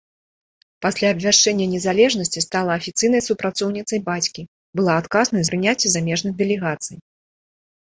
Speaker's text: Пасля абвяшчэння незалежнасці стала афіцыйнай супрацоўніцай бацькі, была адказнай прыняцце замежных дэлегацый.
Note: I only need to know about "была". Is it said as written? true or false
true